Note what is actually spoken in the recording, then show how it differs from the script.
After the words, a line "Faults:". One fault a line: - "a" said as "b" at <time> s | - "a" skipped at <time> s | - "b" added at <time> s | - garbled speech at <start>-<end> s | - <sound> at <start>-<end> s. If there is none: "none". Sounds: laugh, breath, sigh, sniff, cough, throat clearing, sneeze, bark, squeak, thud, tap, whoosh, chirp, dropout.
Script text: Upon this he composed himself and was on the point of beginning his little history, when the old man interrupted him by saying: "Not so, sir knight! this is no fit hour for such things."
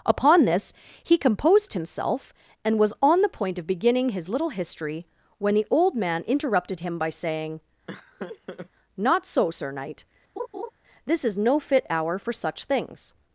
Upon this he composed himself and was on the point of beginning his little history, when the old man interrupted him by saying: "Not so, sir knight! this is no fit hour for such things."
Faults:
- laugh at 7.9-8.7 s
- laugh at 10.4-10.7 s